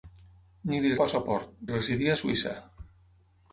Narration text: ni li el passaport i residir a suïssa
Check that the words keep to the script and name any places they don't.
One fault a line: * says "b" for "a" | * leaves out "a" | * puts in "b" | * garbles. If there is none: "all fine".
all fine